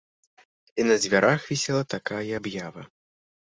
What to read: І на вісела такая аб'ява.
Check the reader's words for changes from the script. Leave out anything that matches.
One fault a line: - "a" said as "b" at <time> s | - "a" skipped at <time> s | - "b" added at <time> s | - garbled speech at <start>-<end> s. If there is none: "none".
- "дзвярах" added at 1.0 s